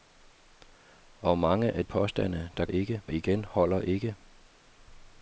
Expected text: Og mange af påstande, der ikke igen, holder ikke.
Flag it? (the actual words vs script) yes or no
no